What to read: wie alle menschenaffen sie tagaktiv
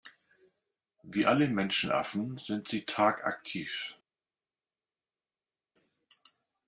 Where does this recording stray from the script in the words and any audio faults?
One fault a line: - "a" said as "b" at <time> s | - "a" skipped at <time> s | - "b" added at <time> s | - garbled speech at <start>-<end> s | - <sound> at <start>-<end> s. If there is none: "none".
- "sind" added at 2.4 s